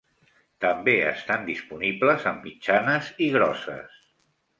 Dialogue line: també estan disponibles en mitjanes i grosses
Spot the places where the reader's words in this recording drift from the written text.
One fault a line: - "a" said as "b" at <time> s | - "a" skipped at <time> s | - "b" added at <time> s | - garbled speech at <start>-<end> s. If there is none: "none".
none